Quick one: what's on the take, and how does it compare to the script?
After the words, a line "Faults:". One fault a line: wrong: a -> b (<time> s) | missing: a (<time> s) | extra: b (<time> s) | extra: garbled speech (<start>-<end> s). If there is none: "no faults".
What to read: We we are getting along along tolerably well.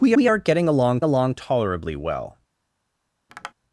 We we are getting along along tolerably well.
Faults:
no faults